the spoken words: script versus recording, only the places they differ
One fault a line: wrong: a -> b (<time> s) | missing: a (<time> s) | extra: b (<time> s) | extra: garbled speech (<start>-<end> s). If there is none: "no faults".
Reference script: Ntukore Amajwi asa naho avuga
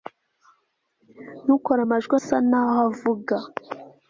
no faults